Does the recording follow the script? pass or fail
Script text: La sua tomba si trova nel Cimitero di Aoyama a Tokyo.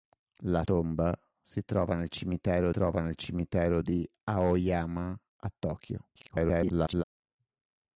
fail